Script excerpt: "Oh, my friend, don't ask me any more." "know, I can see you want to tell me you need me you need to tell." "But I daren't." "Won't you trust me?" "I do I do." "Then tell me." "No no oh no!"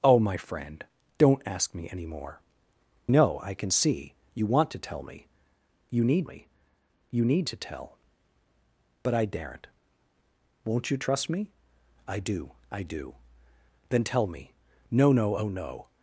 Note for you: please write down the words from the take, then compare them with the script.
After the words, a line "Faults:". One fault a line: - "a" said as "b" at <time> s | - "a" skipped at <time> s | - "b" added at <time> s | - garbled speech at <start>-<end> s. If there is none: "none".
"Oh, my friend, don't ask me any more." "know, I can see you want to tell me you need me you need to tell." "But I daren't." "Won't you trust me?" "I do I do." "Then tell me." "No no oh no!"
Faults:
none